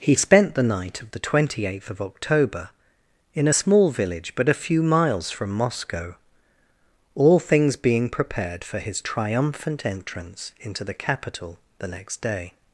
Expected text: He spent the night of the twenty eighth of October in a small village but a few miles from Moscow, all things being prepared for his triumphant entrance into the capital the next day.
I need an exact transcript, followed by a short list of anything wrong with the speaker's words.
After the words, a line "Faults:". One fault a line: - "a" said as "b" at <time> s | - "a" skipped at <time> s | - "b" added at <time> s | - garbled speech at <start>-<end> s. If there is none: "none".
He spent the night of the twenty eighth of October in a small village but a few miles from Moscow, all things being prepared for his triumphant entrance into the capital the next day.
Faults:
none